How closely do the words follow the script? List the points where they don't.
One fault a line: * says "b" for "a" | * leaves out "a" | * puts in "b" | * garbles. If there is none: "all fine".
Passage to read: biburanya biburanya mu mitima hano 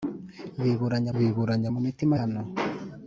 all fine